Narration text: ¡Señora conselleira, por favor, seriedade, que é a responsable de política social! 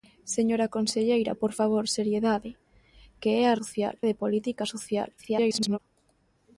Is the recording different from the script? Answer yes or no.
yes